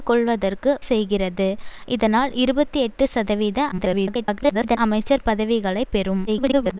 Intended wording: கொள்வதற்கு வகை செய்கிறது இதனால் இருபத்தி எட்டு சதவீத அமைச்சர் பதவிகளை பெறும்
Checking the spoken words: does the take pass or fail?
fail